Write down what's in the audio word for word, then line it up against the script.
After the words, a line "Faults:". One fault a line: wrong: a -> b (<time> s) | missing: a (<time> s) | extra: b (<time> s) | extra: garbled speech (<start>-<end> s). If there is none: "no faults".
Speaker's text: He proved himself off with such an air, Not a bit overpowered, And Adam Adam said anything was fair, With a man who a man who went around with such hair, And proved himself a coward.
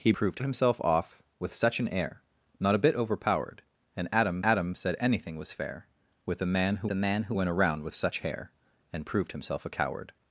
He proved himself off with such an air, Not a bit overpowered, And Adam Adam said anything was fair, With a man who a man who went around with such hair, And proved himself a coward.
Faults:
no faults